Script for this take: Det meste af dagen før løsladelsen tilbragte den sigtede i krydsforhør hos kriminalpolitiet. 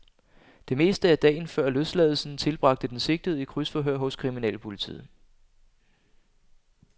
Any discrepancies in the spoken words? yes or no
no